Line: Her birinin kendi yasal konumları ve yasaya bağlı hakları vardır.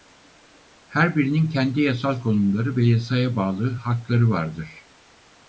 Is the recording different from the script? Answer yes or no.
no